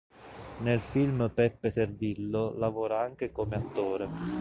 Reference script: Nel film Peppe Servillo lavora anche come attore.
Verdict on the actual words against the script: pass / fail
pass